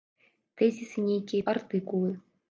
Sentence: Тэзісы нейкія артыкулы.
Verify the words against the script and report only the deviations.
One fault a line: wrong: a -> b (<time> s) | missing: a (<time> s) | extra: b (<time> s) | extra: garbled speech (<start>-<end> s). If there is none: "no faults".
no faults